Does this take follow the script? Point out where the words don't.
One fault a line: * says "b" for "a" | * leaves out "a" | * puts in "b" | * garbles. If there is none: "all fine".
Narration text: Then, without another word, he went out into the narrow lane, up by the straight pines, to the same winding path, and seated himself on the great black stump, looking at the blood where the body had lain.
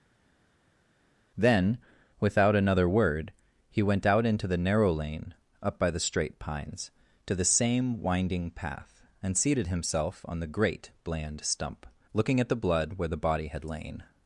* says "bland" for "black"